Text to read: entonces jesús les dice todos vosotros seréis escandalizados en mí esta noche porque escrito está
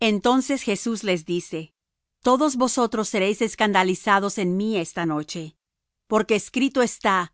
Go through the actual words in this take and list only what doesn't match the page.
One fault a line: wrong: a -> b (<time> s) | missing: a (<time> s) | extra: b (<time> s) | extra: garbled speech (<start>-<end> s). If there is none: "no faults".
no faults